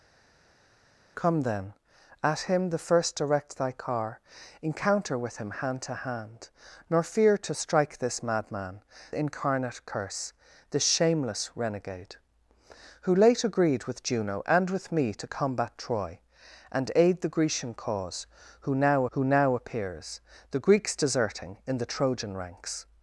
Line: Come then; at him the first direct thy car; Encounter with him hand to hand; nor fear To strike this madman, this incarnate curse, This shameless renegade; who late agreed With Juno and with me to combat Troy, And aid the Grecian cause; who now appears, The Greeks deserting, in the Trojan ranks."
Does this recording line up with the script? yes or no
no